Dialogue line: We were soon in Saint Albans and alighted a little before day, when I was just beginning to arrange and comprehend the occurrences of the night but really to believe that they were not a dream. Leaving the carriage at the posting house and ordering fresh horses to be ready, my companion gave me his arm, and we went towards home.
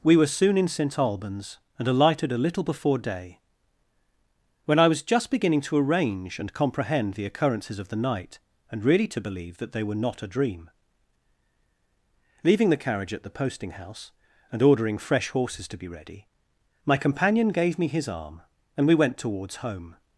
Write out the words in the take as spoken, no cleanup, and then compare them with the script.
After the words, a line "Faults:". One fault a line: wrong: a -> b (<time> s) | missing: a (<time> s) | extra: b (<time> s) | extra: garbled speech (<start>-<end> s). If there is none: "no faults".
We were soon in Saint Albans and alighted a little before day, when I was just beginning to arrange and comprehend the occurrences of the night and really to believe that they were not a dream. Leaving the carriage at the posting house and ordering fresh horses to be ready, my companion gave me his arm, and we went towards home.
Faults:
wrong: but -> and (8.7 s)